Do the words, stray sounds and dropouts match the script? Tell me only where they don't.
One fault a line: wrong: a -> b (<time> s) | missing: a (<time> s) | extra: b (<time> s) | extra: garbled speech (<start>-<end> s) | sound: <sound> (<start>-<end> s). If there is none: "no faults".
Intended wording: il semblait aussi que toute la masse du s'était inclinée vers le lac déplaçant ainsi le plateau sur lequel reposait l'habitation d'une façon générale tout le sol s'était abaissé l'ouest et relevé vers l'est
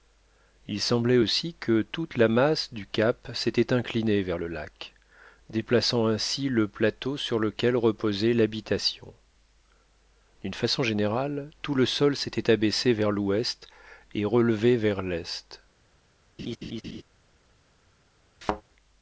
extra: cap (2.9 s)
extra: vers (12.9 s)
sound: laugh (16.4-17.0 s)
sound: thud (18.4-18.6 s)